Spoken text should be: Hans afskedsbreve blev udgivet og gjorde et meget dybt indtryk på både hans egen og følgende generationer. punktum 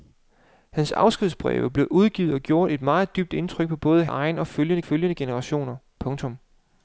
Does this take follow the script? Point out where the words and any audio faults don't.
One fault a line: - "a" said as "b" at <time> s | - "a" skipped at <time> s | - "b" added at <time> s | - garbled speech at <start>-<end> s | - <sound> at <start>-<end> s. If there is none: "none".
- "hans" skipped at 4.0 s
- "følgende" added at 4.8 s